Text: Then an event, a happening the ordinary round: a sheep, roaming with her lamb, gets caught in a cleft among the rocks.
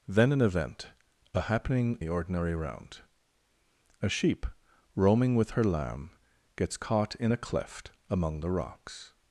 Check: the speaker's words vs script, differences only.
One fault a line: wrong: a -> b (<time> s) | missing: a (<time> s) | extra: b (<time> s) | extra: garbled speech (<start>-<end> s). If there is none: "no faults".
no faults